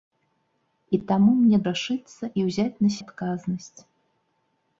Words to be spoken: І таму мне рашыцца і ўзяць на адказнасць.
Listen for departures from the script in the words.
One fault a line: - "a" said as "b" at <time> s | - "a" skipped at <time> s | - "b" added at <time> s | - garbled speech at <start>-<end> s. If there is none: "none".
none